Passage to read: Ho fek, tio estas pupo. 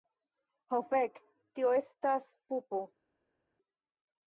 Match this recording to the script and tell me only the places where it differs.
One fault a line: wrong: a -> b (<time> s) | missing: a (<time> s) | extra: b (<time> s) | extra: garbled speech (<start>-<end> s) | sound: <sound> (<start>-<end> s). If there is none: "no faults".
no faults